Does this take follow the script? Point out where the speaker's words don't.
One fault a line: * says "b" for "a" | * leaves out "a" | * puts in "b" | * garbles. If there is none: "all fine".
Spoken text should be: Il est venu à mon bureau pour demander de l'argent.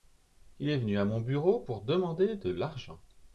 all fine